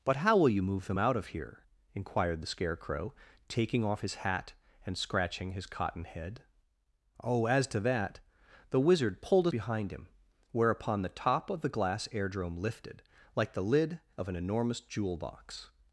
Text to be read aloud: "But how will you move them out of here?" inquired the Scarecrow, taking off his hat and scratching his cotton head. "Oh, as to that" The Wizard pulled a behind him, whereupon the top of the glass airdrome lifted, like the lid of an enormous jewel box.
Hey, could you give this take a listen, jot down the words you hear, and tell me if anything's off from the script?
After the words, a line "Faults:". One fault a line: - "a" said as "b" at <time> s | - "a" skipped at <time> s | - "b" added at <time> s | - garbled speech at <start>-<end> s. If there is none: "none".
"But how will you move them out of here?" inquired the Scarecrow, taking off his hat and scratching his cotton head. "Oh, as to that" The Wizard pulled a behind him, whereupon the top of the glass airdrome lifted, like the lid of an enormous jewel box.
Faults:
none